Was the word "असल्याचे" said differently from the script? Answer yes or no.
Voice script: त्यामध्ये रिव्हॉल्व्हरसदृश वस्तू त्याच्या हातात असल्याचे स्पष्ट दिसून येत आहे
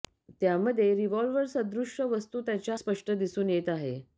yes